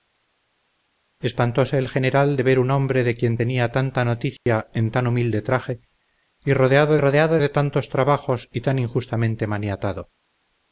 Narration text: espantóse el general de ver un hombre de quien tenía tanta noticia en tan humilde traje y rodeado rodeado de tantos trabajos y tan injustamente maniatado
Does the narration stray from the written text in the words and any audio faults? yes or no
yes